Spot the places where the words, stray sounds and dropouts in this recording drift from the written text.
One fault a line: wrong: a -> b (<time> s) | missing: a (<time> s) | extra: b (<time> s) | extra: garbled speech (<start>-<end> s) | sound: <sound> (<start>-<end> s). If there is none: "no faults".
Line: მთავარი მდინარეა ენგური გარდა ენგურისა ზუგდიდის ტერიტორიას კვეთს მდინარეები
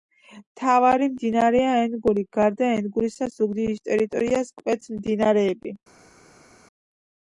no faults